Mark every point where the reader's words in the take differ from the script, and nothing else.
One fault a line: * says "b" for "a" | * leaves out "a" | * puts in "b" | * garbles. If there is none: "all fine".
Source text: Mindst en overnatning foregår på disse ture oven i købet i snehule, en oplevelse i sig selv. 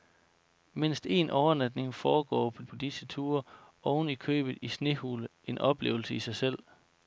* puts in "på"